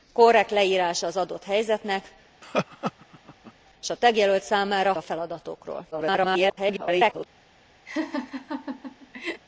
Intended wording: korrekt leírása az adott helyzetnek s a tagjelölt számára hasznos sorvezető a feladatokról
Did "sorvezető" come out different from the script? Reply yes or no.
yes